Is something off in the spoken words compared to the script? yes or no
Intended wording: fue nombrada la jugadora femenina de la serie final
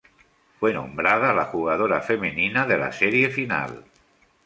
no